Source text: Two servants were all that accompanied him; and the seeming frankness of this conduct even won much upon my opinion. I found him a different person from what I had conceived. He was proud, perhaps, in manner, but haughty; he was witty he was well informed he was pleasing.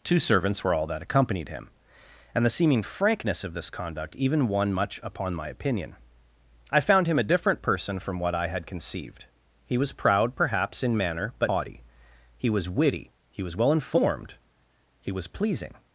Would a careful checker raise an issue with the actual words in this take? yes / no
no